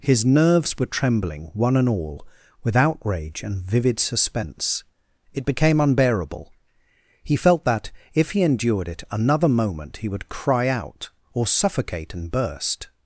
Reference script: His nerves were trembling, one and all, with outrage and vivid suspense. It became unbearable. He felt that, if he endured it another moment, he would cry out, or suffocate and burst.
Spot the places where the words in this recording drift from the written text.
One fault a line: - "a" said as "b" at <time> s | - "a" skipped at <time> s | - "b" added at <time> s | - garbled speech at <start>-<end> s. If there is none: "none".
none